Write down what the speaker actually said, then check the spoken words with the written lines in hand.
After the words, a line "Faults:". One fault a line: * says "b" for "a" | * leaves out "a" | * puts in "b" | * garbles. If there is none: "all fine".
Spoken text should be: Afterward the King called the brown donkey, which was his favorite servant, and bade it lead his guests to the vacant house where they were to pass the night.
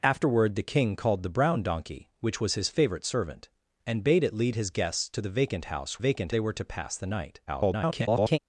Afterward the King called the brown donkey, which was his favorite servant, and bade it lead his guests to the vacant house vacant they were to pass the night. [garbled]
Faults:
* says "vacant" for "where"
* garbles